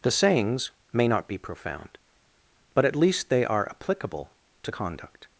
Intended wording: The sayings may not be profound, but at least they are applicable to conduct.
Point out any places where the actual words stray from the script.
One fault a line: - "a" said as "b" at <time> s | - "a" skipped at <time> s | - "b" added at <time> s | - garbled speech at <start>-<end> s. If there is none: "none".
none